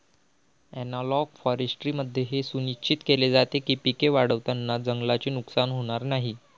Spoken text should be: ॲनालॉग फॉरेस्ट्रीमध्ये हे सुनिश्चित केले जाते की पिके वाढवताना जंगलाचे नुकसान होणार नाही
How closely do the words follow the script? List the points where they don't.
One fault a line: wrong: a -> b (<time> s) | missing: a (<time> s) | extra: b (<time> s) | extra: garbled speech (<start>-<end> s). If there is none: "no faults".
no faults